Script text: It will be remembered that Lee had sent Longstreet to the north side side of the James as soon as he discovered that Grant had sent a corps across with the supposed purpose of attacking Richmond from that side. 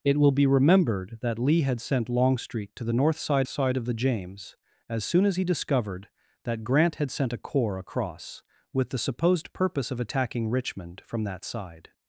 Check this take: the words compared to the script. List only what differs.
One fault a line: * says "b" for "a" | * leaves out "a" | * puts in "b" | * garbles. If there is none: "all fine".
all fine